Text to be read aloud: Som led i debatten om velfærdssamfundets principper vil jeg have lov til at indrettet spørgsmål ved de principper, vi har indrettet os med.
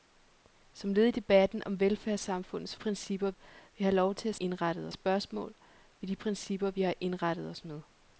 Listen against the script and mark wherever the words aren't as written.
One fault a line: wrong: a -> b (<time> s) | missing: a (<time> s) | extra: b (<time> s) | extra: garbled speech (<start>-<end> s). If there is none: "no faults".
no faults